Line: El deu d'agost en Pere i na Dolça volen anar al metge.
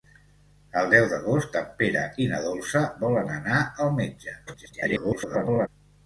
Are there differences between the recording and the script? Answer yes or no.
yes